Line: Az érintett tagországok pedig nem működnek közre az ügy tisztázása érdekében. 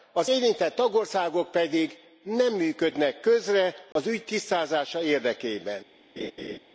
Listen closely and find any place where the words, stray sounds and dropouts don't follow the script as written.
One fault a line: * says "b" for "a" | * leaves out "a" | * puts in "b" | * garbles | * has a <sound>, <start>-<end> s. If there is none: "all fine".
* has a dropout, 3.9-4.0 s
* has a laugh, 6.2-6.6 s